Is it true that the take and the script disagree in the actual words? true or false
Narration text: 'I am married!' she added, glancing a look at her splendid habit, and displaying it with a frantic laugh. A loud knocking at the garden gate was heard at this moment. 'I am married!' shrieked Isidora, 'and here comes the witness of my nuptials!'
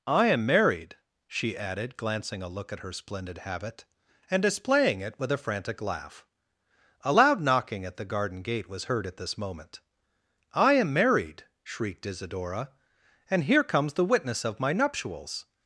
false